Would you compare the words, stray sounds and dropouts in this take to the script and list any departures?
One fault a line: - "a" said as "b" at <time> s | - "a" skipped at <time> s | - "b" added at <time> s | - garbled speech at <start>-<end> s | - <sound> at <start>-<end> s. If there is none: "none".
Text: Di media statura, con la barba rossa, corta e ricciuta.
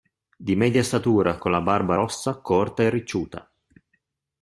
none